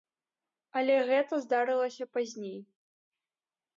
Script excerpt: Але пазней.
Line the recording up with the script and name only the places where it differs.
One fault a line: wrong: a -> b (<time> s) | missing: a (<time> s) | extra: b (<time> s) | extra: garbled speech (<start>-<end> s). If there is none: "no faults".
extra: гэта здарылася (1.1 s)